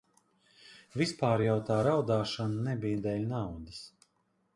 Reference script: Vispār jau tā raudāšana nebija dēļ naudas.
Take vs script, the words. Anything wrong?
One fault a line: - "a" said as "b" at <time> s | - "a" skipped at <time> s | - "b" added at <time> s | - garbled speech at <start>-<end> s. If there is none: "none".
none